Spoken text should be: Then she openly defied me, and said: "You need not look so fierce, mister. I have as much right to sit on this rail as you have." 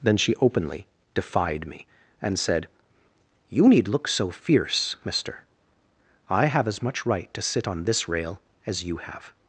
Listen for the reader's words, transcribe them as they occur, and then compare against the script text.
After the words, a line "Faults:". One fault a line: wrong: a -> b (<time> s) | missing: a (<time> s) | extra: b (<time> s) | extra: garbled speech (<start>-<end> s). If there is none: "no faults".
Then she openly defied me, and said: "You need look so fierce, mister. I have as much right to sit on this rail as you have."
Faults:
missing: not (3.9 s)